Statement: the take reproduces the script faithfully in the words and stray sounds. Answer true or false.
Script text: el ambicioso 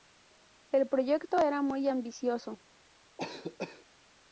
false